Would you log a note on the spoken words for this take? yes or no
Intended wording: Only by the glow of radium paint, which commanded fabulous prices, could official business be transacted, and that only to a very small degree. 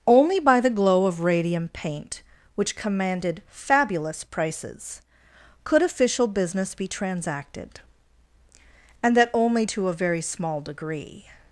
no